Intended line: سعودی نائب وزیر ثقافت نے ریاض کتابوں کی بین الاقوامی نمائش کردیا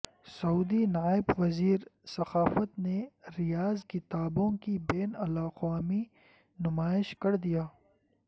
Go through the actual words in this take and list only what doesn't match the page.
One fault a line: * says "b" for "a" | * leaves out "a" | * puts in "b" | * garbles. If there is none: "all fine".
all fine